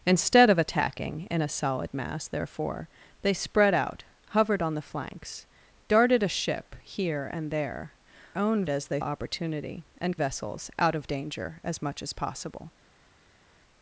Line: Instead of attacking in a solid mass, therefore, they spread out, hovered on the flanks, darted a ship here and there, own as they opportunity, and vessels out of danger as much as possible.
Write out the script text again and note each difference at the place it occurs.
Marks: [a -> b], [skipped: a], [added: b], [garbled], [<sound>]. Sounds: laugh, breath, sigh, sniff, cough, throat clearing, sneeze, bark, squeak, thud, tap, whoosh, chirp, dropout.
Instead of attacking in a solid mass, therefore, they spread out, hovered on the flanks, darted a ship here and there, own as they opportunity, and vessels out of danger as much as possible.